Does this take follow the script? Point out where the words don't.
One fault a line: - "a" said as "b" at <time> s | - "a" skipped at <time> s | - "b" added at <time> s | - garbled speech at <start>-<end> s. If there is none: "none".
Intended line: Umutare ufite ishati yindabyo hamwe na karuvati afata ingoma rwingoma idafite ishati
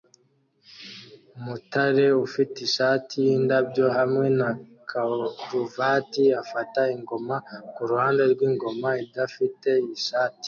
- "kuruhande" added at 7.7 s